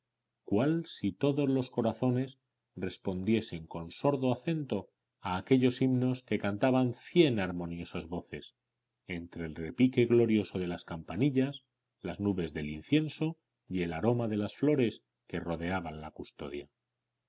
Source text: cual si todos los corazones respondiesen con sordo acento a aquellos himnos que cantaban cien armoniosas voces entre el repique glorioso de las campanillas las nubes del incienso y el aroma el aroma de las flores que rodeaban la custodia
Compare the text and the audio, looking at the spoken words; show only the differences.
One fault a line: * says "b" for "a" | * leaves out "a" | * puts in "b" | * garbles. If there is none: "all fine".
* leaves out "el aroma"